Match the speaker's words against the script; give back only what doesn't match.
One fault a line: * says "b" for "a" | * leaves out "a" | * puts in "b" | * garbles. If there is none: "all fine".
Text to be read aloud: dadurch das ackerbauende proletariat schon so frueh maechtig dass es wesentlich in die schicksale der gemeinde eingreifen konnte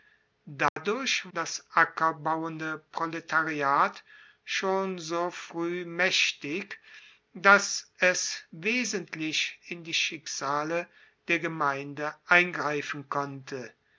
all fine